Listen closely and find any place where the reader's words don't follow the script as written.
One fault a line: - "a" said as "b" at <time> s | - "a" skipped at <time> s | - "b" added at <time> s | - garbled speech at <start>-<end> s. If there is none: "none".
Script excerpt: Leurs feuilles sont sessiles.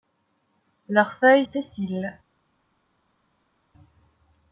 - "sont" skipped at 1.4 s